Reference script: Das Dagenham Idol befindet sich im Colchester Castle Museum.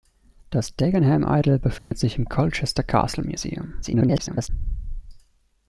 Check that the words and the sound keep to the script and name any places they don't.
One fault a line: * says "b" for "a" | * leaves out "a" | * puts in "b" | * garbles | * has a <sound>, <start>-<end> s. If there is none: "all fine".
* has a dropout, 1.8-1.9 s
* garbles